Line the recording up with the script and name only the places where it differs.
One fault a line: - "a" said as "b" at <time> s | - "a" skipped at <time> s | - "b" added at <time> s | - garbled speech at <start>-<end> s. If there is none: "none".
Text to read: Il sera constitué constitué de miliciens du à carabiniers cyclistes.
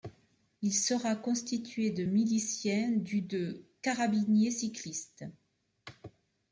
- "constitué" skipped at 1.9 s
- "à" said as "de" at 3.2 s